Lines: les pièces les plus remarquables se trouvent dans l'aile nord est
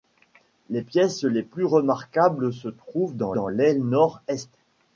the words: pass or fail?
fail